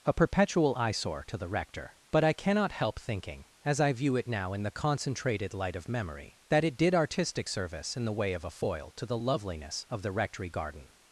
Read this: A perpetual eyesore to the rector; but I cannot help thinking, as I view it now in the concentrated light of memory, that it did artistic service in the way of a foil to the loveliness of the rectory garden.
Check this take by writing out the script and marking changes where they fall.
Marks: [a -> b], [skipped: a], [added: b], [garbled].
A perpetual eyesore to the rector; but I cannot help thinking, as I view it now in the concentrated light of memory, that it did artistic service in the way of a foil to the loveliness of the rectory garden.